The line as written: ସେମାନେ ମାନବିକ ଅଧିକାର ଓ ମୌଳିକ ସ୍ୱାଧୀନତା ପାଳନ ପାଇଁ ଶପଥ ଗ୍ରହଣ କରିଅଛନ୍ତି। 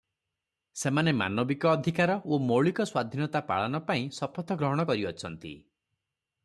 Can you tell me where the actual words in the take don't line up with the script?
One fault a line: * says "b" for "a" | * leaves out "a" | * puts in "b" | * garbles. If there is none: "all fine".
all fine